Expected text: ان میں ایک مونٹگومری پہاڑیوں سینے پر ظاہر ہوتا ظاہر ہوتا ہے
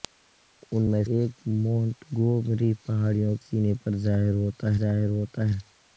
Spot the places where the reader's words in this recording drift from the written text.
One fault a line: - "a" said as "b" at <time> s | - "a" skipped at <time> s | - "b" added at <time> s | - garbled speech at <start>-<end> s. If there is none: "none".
none